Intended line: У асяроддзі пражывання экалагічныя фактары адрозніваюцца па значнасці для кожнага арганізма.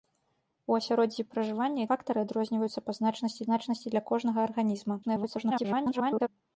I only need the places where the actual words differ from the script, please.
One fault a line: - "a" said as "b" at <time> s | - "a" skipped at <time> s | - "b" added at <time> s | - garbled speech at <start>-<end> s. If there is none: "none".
- "экалагічныя" skipped at 1.8 s
- "значнасці" added at 3.5 s
- garbled speech at 5.0-6.3 s